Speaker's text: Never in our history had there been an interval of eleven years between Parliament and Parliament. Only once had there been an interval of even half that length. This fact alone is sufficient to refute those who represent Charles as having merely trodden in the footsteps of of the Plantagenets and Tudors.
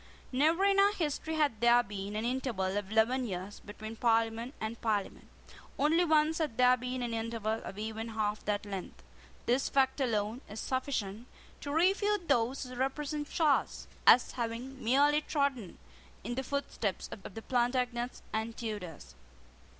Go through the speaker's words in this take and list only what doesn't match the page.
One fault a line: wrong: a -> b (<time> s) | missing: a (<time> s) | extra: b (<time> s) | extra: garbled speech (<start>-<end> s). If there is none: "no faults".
no faults